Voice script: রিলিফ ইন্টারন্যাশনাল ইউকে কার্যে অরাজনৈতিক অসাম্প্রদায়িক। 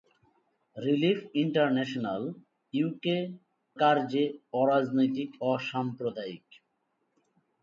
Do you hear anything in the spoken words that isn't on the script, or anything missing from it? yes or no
no